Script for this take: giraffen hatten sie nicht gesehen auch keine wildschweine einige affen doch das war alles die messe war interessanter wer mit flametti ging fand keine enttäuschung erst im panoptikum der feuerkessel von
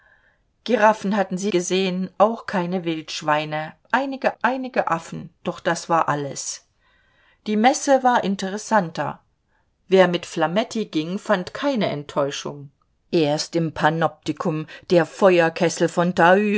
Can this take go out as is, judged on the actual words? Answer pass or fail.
fail